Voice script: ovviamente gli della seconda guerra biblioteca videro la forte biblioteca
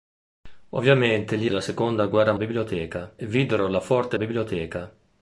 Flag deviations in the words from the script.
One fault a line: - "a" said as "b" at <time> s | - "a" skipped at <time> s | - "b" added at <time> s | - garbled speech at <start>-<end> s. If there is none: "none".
none